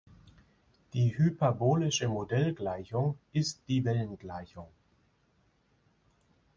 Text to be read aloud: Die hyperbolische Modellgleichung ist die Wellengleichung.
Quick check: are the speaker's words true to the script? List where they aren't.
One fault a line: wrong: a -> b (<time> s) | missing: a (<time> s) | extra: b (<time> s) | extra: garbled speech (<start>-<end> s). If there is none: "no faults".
no faults